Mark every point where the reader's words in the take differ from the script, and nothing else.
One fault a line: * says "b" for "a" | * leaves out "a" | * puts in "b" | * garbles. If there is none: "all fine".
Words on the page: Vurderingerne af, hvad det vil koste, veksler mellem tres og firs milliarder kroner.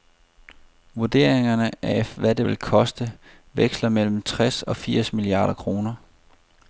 all fine